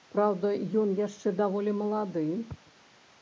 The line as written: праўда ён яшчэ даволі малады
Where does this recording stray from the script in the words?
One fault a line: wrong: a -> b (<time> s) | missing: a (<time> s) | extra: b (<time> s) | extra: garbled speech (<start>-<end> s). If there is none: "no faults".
no faults